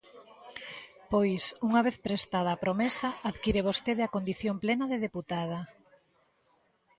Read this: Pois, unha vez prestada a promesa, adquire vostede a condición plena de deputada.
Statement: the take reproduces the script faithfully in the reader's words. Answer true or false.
true